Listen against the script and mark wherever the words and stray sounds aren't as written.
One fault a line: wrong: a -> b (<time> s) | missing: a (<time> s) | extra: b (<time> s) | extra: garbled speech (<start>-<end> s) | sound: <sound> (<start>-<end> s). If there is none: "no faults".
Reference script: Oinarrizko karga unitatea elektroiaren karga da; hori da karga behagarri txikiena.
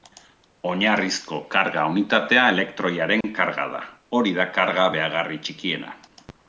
sound: dropout (3.2-3.2 s)